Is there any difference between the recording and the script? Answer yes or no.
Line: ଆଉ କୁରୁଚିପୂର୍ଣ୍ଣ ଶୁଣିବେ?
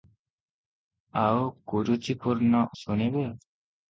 no